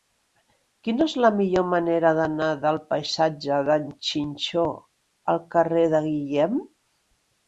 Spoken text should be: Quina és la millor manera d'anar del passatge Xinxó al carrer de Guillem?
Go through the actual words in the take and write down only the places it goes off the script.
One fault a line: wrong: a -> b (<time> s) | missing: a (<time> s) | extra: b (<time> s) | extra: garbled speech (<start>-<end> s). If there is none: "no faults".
extra: d'en (3.7 s)